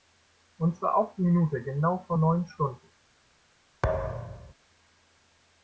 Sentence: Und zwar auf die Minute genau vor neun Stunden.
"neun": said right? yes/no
yes